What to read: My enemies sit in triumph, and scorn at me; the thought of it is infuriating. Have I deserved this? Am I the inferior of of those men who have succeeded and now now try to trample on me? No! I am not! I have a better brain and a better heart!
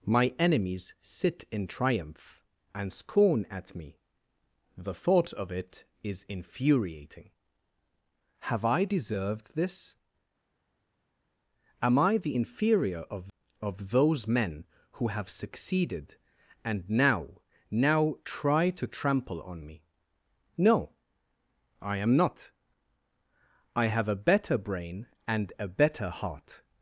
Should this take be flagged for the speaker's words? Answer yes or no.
no